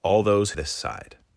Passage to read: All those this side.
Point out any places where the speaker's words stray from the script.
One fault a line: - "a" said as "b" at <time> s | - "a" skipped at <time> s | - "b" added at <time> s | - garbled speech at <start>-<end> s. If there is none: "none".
none